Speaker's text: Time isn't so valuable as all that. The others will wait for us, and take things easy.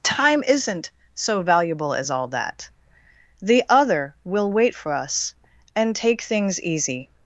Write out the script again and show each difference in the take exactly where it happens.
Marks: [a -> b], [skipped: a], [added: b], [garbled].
Time isn't so valuable as all that. The [others -> other] will wait for us, and take things easy.